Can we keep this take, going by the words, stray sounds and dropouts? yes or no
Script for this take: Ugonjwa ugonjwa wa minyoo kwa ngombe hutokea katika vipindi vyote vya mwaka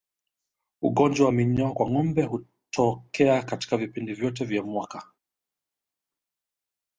no